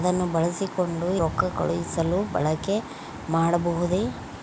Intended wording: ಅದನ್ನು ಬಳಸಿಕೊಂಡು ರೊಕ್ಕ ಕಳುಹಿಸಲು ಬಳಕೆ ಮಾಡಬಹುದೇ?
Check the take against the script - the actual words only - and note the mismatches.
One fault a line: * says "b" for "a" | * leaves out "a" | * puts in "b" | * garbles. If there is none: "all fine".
all fine